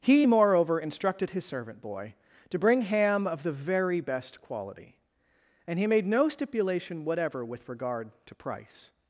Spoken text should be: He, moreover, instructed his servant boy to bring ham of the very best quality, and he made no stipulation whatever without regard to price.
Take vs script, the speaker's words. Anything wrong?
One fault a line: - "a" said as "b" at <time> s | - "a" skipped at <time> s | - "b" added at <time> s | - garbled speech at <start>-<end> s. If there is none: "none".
- "without" said as "with" at 7.4 s